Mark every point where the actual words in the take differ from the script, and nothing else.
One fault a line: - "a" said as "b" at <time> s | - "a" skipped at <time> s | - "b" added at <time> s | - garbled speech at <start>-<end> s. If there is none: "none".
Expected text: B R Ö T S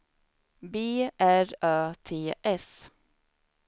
none